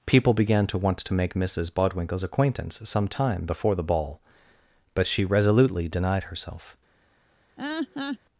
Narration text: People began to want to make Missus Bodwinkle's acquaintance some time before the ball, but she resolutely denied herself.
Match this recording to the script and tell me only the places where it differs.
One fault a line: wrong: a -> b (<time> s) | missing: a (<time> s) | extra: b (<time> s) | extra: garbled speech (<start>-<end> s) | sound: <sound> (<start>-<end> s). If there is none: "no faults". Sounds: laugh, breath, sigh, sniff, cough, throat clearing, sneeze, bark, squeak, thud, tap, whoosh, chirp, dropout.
sound: laugh (7.6-8.2 s)